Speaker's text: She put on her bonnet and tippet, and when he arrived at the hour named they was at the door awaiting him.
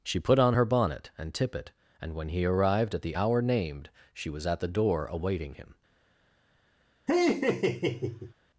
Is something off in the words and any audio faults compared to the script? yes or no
yes